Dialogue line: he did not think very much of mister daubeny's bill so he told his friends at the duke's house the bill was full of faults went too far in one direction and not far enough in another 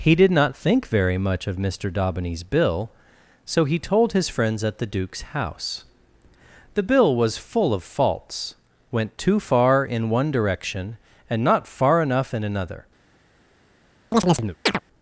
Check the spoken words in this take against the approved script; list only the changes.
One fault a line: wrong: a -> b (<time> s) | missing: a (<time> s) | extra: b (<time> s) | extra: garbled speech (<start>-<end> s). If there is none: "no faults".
no faults